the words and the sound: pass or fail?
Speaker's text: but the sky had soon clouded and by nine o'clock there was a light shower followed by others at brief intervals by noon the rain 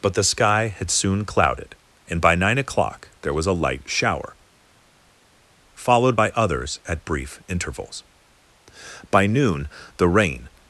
pass